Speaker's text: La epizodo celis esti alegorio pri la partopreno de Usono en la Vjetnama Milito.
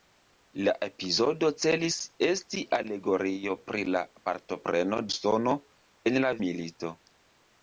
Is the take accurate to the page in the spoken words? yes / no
no